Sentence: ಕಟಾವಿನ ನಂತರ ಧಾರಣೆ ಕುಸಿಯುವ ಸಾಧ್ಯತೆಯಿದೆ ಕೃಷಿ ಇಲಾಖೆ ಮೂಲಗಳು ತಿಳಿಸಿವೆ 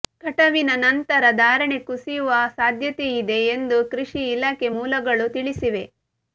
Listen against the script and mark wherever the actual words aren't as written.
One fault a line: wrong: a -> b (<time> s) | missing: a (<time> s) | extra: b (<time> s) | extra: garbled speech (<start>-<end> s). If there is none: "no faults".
extra: ಎಂದು (3.5 s)